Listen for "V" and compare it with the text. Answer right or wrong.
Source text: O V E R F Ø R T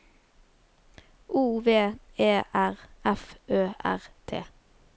right